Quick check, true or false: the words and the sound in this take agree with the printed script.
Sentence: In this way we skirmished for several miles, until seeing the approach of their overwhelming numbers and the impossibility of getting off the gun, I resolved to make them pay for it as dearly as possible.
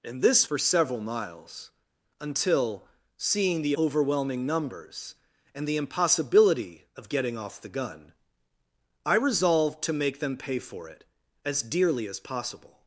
false